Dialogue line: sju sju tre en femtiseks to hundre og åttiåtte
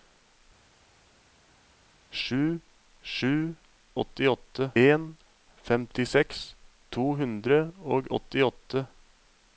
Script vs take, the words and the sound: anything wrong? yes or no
yes